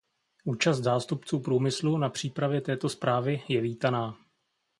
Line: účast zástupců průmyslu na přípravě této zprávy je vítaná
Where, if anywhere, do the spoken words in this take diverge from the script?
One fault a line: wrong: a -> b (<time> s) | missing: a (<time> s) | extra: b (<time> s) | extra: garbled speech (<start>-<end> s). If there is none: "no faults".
no faults